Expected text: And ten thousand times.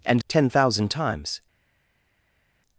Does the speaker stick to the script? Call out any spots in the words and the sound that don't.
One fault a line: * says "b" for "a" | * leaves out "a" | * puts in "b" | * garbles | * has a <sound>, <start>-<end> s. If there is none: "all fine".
all fine